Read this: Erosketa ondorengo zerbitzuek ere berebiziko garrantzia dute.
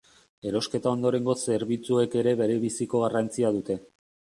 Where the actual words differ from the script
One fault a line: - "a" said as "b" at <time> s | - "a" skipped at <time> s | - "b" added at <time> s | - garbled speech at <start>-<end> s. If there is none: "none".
none